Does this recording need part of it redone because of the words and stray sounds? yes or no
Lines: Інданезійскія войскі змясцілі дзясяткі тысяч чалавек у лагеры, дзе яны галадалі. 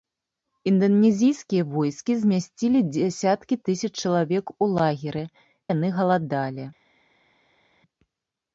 yes